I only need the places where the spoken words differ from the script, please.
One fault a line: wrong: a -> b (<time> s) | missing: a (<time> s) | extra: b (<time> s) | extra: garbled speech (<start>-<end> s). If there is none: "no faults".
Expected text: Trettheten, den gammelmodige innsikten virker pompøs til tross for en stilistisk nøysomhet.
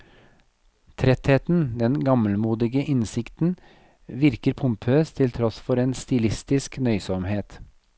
no faults